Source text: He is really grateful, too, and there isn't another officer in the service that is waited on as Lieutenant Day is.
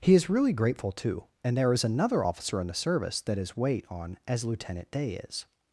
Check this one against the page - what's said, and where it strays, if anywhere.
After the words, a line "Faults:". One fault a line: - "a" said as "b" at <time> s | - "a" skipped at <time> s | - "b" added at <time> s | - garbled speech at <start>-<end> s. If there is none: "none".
He is really grateful, too, and there is another officer in the service that is wait on as Lieutenant Day is.
Faults:
- "isn't" said as "is" at 1.7 s
- "waited" said as "wait" at 3.6 s